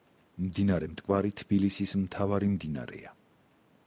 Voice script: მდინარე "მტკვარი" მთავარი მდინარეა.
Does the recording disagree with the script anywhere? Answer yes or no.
yes